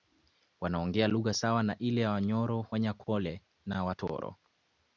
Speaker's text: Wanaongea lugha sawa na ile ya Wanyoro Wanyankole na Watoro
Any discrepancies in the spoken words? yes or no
no